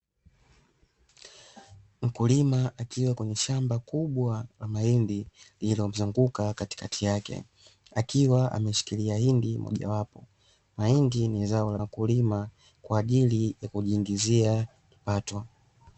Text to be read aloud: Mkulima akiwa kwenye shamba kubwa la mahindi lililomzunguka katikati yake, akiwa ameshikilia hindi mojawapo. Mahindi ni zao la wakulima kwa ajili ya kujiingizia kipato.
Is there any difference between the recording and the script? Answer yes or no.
no